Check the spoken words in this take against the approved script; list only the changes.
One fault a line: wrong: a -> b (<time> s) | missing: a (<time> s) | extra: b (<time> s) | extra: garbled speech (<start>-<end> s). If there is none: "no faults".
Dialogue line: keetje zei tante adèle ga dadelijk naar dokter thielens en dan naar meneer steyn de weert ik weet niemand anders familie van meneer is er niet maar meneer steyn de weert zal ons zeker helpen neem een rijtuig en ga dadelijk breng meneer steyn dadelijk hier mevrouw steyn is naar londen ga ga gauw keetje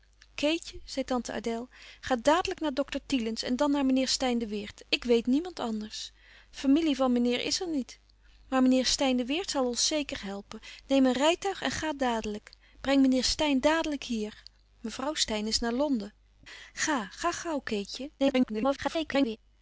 extra: garbled speech (18.2-19.4 s)